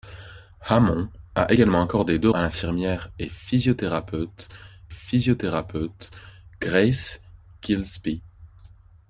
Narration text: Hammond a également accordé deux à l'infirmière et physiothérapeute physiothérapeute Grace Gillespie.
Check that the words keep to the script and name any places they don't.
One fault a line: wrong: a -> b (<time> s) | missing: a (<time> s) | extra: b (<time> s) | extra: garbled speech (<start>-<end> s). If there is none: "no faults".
no faults